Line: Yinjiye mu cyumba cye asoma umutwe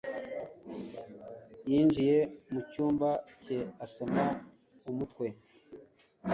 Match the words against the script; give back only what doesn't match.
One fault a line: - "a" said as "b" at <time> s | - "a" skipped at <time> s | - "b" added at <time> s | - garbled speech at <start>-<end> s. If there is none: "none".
none